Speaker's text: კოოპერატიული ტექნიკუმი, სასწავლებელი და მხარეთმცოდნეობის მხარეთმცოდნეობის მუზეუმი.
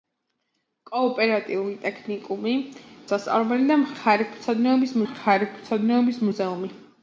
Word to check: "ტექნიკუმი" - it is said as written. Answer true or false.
true